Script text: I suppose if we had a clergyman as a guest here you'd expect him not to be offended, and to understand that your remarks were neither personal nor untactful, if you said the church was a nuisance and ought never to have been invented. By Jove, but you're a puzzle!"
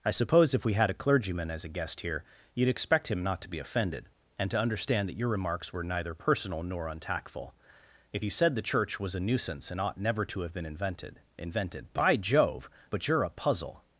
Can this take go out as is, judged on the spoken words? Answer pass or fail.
fail